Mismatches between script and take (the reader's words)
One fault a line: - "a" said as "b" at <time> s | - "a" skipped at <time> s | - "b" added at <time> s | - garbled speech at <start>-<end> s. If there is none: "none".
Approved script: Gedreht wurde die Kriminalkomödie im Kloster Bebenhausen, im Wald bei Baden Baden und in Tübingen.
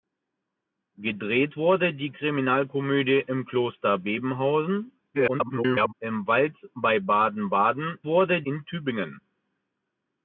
- garbled speech at 5.1-5.9 s
- "und" said as "wurde" at 8.1 s